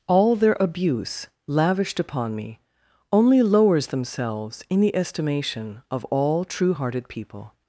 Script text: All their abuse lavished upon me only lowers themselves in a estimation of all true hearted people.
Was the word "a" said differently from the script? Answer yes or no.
yes